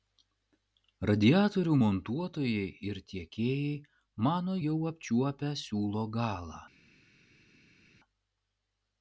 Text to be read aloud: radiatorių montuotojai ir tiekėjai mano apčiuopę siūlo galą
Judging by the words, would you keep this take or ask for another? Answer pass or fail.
fail